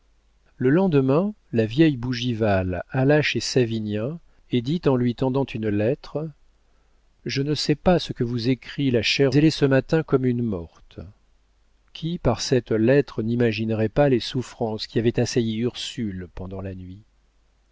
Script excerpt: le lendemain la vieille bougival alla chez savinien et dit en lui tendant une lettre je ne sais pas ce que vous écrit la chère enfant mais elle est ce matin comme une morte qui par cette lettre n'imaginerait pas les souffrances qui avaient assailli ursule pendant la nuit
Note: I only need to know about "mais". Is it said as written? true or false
false